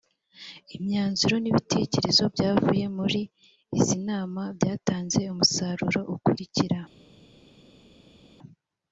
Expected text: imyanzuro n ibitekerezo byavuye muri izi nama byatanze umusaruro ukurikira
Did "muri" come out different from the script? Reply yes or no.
no